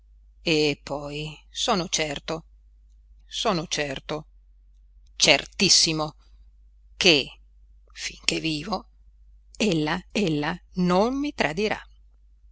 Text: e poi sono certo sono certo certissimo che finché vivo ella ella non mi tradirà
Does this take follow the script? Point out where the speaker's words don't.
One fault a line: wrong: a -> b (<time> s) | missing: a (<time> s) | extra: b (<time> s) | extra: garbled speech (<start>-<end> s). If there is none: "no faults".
no faults